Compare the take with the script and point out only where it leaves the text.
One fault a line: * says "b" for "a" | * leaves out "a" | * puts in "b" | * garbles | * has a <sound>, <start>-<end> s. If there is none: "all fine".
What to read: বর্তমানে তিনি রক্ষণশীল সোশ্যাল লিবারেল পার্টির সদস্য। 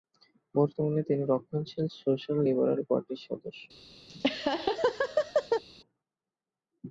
* has a laugh, 4.1-5.6 s